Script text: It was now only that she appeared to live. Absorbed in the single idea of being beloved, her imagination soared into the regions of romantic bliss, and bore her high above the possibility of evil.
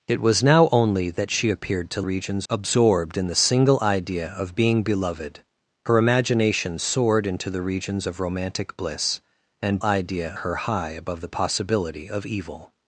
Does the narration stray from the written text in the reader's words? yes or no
yes